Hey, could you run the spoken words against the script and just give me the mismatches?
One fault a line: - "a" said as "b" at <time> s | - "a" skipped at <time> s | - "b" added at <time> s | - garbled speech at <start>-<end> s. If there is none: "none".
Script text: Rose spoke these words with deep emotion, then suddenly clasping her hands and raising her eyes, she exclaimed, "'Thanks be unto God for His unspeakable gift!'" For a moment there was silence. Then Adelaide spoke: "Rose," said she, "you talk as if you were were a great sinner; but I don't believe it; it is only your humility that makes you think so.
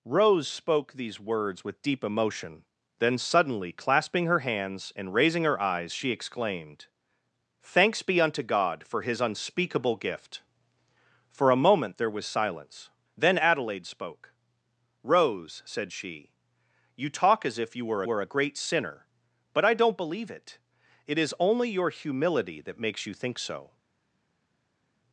none